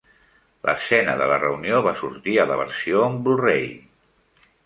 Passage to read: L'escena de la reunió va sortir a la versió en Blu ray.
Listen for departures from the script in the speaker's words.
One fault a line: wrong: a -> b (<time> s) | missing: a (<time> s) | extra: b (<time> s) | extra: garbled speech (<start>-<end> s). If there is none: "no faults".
no faults